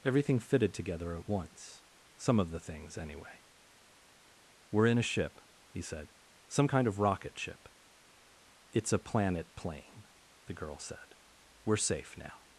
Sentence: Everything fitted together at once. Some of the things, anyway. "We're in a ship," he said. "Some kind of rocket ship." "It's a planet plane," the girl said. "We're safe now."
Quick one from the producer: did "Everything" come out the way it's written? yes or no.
yes